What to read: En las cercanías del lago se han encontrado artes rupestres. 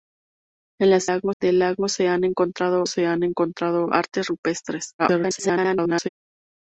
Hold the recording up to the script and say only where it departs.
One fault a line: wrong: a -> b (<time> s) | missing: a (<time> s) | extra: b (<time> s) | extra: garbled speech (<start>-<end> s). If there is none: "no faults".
wrong: cercanías -> lago (1.0 s)
extra: se han encontrado (2.9 s)
extra: garbled speech (5.0-6.1 s)